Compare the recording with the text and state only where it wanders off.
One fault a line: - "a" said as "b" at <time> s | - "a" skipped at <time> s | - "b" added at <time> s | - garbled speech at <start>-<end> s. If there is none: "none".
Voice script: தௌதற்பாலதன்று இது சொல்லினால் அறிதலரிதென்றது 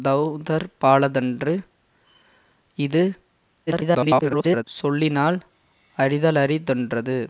- garbled speech at 3.7-4.6 s